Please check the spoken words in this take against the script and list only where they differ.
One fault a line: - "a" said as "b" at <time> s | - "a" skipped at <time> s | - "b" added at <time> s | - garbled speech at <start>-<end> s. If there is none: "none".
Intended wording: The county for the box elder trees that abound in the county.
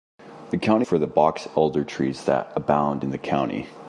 none